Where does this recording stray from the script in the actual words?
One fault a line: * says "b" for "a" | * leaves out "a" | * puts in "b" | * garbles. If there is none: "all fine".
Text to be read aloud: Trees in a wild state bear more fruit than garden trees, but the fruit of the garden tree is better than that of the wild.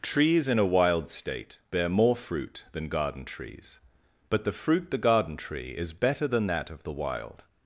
* leaves out "of"